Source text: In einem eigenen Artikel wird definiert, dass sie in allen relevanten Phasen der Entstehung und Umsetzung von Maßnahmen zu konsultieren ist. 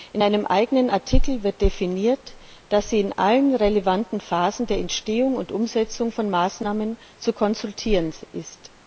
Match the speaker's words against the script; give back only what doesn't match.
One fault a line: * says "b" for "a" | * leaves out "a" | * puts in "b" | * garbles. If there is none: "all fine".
all fine